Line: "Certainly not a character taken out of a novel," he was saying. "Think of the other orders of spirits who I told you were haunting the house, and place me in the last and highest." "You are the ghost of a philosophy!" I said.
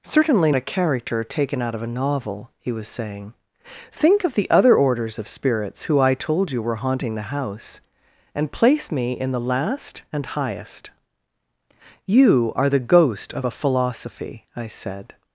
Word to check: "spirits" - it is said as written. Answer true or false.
true